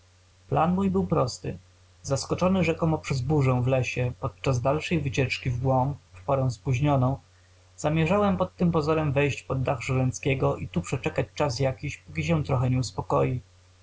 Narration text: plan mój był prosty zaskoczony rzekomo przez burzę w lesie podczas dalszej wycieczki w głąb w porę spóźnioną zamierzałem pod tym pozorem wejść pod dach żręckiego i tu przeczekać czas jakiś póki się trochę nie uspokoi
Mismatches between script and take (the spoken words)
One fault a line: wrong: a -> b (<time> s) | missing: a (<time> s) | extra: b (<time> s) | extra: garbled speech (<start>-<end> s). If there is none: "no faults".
no faults